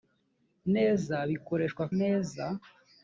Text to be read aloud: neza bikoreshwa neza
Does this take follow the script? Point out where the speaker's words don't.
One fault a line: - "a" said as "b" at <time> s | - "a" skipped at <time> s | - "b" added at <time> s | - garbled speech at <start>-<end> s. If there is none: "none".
none